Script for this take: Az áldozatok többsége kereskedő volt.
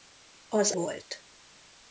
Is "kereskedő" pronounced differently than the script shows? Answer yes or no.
yes